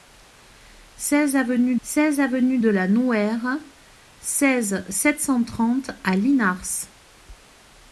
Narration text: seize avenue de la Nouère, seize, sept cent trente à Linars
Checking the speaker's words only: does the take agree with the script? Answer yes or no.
no